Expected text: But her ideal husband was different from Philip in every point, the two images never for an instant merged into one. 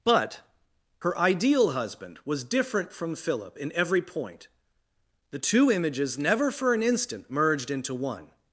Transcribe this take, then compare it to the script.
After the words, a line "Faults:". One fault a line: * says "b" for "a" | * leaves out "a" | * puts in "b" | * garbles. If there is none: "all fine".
But her ideal husband was different from Philip in every point, the two images never for an instant merged into one.
Faults:
all fine